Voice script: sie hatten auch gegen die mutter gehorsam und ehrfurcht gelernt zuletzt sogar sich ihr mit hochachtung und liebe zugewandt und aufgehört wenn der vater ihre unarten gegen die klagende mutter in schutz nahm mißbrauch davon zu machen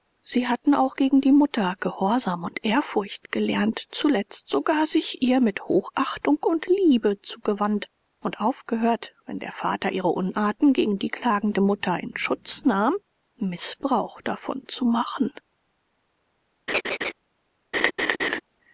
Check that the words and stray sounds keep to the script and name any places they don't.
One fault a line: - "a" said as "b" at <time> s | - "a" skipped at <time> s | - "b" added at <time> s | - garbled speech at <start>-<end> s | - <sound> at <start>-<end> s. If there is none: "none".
- laugh at 16.7-17.1 s
- laugh at 17.7-18.4 s